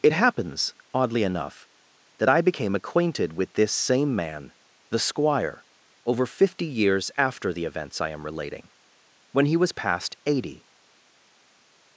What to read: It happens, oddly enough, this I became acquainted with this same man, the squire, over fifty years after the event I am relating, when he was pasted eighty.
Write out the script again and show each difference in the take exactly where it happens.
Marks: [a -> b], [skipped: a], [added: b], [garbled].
It happens, oddly enough, [this -> that] I became acquainted with this same man, the squire, over fifty years after the [event -> events] I am relating, when he was [pasted -> past] eighty.